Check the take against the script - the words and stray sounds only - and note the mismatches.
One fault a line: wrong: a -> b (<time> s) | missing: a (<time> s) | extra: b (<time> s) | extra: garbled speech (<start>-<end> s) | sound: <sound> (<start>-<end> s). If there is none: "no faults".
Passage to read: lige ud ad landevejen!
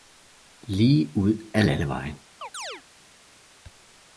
sound: chirp (2.4-2.8 s)